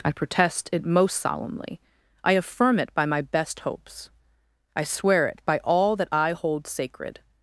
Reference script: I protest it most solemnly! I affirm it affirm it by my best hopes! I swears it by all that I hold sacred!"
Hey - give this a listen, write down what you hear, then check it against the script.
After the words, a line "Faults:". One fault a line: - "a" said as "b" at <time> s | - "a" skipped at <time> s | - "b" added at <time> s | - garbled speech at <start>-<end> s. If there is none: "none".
I protest it most solemnly! I affirm it by my best hopes! I swear it by all that I hold sacred!"
Faults:
- "affirm it" skipped at 2.9 s
- "swears" said as "swear" at 4.8 s